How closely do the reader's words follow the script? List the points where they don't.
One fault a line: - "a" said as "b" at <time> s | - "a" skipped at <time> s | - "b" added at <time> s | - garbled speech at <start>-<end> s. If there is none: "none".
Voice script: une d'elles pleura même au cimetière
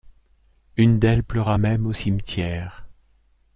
none